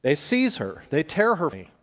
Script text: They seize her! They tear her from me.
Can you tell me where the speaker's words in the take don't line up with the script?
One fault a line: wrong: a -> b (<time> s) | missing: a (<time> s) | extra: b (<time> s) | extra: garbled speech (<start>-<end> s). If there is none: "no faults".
missing: from (1.5 s)